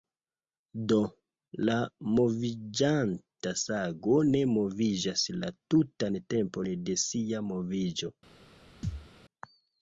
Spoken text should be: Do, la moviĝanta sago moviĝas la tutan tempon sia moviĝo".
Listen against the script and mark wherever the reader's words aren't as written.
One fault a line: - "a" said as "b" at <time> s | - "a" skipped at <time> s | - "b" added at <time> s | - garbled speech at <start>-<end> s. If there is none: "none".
- "ne" added at 4.3 s
- "de" added at 6.9 s